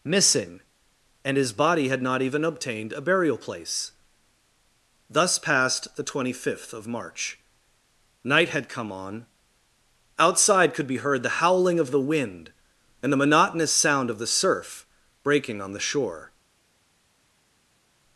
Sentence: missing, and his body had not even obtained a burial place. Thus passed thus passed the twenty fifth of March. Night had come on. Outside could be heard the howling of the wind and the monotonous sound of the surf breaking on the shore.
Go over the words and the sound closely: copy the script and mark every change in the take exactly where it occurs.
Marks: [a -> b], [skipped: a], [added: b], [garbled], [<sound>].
missing, and his body had not even obtained a burial place. Thus passed [skipped: thus passed] the twenty fifth of March. Night had come on. Outside could be heard the howling of the wind and the monotonous sound of the surf breaking on the shore.